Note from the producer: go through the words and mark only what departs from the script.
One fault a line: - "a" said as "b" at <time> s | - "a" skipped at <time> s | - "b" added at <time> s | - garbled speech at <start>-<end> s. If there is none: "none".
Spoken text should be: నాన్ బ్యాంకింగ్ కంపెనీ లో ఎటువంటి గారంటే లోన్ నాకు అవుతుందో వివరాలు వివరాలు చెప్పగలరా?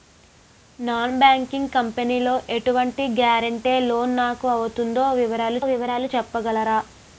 none